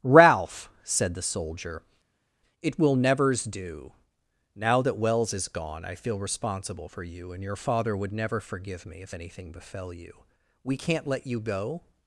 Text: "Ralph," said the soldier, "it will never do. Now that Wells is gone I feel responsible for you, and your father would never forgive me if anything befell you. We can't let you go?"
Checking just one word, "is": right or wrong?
right